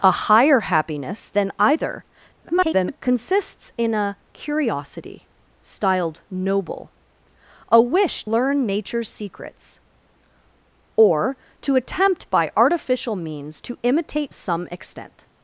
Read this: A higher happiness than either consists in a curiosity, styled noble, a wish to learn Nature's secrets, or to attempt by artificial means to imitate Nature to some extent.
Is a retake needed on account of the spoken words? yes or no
yes